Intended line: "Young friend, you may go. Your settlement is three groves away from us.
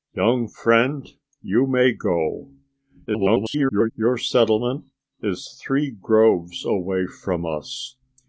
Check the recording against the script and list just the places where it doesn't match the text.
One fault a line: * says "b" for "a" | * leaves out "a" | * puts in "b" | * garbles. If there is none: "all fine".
* garbles